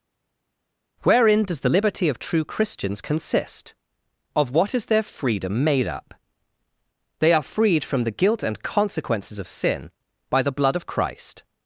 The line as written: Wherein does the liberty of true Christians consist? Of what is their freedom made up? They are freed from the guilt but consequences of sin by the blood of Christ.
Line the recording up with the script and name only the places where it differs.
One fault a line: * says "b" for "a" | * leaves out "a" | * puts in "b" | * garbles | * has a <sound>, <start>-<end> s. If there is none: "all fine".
* says "and" for "but"